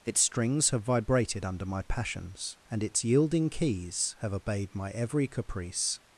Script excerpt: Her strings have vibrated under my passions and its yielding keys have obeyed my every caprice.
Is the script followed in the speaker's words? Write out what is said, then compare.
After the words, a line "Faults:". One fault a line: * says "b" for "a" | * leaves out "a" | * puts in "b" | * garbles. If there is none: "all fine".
Its strings have vibrated under my passions and its yielding keys have obeyed my every caprice.
Faults:
* says "Its" for "Her"